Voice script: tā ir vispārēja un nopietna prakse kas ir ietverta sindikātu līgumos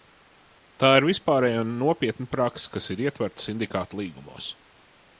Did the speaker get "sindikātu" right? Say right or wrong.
right